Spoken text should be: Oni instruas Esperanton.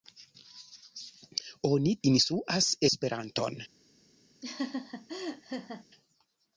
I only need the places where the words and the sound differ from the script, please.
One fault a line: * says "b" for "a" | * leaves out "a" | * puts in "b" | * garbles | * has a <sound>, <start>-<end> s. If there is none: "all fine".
* has a laugh, 4.4-5.8 s